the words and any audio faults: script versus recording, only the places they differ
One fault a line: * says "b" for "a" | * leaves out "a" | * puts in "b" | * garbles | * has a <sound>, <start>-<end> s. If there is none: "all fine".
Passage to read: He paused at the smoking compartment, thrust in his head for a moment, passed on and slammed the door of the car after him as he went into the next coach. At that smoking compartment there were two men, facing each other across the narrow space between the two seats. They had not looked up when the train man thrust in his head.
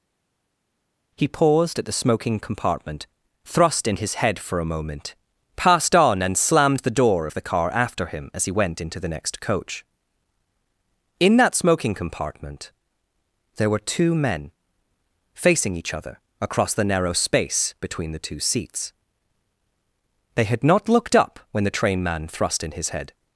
* says "In" for "At"